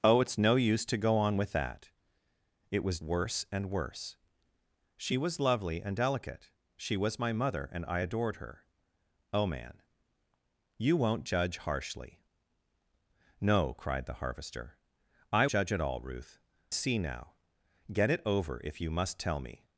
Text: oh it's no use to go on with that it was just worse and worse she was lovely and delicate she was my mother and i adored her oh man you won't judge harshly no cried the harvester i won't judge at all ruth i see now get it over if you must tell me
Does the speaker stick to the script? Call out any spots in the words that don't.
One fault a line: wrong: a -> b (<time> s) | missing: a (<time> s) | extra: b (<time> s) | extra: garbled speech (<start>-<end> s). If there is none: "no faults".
missing: just (3.0 s)
missing: won't (15.5 s)
missing: i (16.4 s)